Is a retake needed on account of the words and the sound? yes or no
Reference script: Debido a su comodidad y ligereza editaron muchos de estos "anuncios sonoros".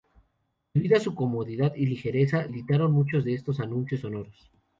no